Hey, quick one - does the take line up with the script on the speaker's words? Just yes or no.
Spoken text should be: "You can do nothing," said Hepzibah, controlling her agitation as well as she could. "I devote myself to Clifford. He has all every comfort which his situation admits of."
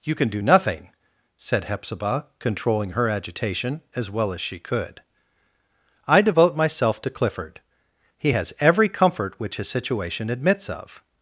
no